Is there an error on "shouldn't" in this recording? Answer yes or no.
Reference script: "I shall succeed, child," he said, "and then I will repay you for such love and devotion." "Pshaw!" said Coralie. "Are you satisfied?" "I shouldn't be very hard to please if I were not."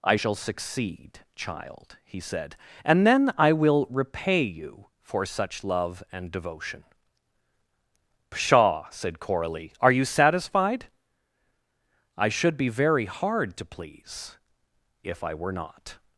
yes